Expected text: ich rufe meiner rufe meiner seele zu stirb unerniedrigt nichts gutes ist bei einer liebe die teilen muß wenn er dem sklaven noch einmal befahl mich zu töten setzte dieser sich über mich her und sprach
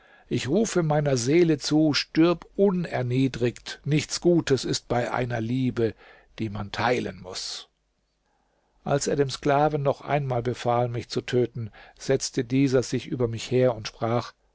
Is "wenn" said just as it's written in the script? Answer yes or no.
no